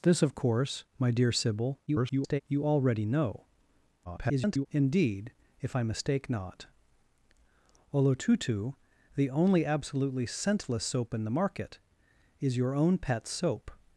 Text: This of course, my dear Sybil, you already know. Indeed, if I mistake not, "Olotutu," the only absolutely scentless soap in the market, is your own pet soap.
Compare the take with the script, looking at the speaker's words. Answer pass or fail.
fail